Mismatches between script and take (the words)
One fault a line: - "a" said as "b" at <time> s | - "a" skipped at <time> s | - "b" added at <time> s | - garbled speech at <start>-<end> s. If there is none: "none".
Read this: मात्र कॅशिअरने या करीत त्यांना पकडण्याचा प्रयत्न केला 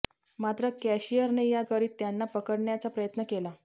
none